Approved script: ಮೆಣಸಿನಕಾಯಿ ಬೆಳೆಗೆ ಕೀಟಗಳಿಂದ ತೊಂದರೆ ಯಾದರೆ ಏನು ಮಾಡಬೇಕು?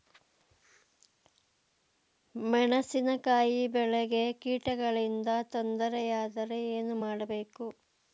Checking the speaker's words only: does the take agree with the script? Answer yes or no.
yes